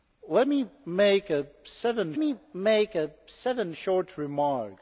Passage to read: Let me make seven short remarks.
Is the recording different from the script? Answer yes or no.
yes